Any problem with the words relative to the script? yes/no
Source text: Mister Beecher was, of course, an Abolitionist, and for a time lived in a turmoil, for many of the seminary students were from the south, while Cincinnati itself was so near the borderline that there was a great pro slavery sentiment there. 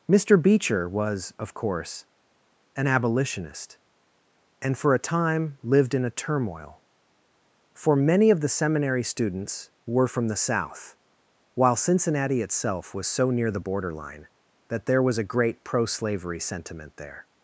no